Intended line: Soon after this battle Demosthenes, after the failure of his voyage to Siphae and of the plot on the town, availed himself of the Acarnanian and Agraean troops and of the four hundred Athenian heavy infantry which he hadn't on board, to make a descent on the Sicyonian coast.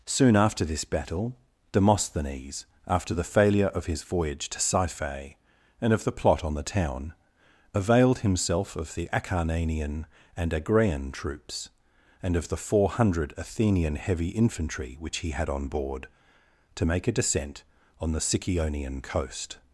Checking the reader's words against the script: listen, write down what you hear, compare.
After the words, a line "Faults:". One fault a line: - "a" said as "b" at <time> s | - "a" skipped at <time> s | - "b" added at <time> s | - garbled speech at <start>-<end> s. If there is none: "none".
Soon after this battle Demosthenes, after the failure of his voyage to Siphae and of the plot on the town, availed himself of the Acarnanian and Agraean troops and of the four hundred Athenian heavy infantry which he had on board, to make a descent on the Sicyonian coast.
Faults:
- "hadn't" said as "had" at 15.3 s